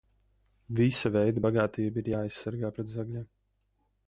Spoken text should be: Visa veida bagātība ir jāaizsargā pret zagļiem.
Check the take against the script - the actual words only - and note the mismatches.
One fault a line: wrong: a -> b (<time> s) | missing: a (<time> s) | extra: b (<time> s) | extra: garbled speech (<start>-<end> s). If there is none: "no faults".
no faults